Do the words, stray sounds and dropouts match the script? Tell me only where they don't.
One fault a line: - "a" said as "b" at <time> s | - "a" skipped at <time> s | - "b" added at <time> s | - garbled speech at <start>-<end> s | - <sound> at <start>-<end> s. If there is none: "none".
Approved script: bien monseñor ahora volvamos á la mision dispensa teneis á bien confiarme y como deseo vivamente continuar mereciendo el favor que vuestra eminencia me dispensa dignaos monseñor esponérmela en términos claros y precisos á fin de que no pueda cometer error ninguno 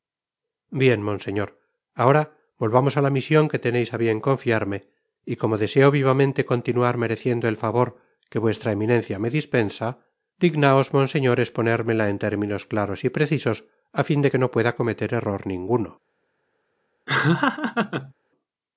- "dispensa" said as "que" at 3.5 s
- laugh at 17.1-18.1 s